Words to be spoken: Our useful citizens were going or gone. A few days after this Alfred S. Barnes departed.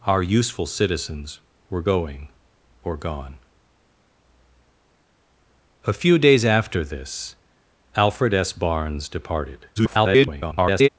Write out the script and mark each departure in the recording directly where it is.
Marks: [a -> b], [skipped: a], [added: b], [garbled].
Our useful citizens were going or gone. A few days after this Alfred S. Barnes departed. [garbled]